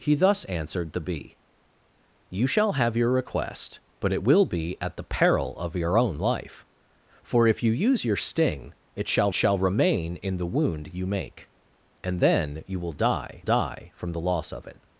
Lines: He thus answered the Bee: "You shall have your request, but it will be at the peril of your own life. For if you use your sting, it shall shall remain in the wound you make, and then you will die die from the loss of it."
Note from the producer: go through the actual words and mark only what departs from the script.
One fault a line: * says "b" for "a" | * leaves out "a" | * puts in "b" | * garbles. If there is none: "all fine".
all fine